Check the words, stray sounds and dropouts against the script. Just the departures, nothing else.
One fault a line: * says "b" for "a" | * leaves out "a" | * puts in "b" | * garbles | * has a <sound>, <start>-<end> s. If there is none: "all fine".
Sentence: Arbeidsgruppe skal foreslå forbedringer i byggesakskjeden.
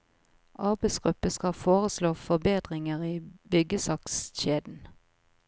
all fine